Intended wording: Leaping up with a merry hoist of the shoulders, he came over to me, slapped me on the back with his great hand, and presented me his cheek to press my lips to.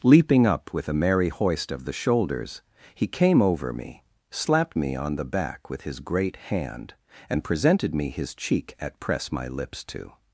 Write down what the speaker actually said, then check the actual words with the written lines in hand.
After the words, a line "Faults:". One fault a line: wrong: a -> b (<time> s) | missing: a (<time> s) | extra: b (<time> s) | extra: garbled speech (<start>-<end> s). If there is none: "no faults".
Leaping up with a merry hoist of the shoulders, he came over me, slapped me on the back with his great hand, and presented me his cheek at press my lips to.
Faults:
missing: to (3.7 s)
wrong: to -> at (8.8 s)